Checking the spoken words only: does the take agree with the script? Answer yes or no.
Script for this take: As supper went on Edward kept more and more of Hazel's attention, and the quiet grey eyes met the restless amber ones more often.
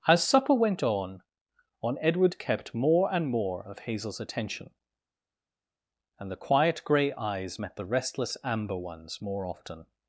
no